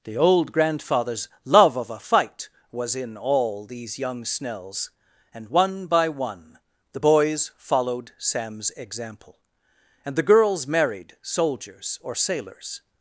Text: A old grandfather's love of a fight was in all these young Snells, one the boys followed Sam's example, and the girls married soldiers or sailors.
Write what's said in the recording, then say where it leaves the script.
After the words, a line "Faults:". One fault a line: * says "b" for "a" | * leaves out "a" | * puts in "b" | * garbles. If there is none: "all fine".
The old grandfather's love of a fight was in all these young Snells, and one by one the boys followed Sam's example, and the girls married soldiers or sailors.
Faults:
* says "The" for "A"
* puts in "and one by"